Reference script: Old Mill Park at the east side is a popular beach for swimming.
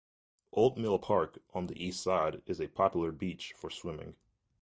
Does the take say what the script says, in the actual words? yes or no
no